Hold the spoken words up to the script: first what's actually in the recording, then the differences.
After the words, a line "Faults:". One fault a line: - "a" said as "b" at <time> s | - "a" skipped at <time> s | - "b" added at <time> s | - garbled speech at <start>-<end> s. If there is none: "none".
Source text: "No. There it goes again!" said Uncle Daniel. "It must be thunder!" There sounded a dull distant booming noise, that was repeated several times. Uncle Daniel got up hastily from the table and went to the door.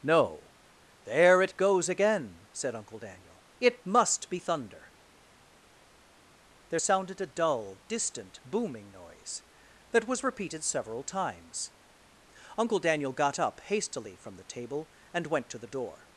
"No. There it goes again!" said Uncle Daniel. "It must be thunder!" There sounded a dull distant booming noise, that was repeated several times. Uncle Daniel got up hastily from the table and went to the door.
Faults:
none